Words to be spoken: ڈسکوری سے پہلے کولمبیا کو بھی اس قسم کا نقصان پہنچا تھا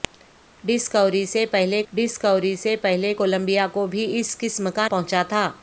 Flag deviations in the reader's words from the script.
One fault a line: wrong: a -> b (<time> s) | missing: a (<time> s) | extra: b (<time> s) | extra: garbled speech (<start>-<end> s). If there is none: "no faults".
extra: ڈسکوری سے پہلے (1.9 s)
missing: نقصان (4.9 s)